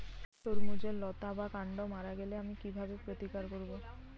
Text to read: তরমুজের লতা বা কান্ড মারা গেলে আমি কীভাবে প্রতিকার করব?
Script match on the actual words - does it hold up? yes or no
yes